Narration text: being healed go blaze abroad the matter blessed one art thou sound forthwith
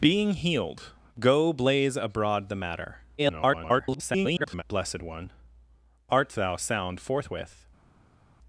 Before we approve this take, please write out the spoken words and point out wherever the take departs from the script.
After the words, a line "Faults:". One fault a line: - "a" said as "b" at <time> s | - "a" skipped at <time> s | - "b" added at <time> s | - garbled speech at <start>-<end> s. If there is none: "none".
being healed go blaze abroad the matter [garbled] blessed one art thou sound forthwith
Faults:
- garbled speech at 3.2-4.6 s